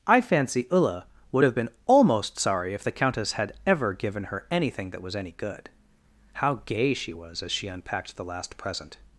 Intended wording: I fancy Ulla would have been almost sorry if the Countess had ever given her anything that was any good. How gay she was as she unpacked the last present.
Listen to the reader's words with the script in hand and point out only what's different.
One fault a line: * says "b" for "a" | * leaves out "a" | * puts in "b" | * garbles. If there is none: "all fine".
all fine